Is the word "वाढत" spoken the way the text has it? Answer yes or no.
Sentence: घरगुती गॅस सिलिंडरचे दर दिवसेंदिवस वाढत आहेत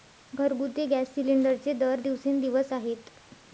no